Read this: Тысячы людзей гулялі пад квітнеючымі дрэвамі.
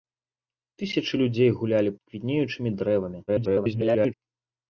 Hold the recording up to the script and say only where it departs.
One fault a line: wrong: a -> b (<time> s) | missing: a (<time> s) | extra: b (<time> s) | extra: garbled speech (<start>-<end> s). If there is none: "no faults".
missing: пад (1.9 s)
extra: garbled speech (3.3-4.1 s)